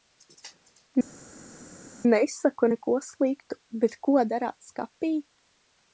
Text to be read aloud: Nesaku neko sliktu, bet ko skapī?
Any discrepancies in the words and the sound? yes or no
yes